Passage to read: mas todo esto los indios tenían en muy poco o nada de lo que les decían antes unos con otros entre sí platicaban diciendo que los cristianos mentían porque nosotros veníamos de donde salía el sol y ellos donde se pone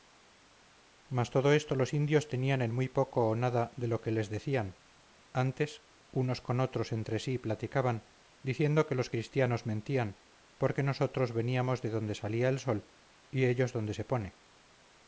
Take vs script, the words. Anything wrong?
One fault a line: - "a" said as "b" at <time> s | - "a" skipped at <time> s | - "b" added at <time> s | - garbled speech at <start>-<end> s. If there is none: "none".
none